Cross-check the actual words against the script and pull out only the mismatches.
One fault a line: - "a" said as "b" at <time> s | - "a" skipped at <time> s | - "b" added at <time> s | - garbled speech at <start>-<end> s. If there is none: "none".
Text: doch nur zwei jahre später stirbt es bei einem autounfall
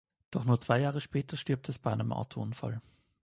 none